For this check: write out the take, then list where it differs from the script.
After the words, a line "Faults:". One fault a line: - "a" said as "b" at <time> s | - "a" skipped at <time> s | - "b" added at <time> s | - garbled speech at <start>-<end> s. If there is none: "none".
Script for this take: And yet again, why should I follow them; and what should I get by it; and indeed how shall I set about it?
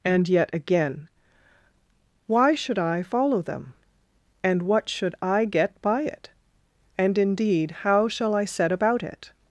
And yet again, why should I follow them; and what should I get by it; and indeed how shall I set about it?
Faults:
none